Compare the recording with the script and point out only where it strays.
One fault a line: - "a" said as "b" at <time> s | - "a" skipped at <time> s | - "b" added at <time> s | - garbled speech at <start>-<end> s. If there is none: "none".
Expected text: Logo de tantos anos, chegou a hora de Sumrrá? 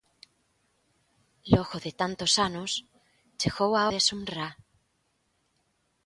- "hora" skipped at 3.8 s